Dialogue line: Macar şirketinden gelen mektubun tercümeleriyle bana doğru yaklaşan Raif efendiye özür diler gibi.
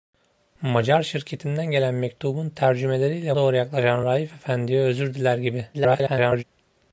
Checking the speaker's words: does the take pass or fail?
fail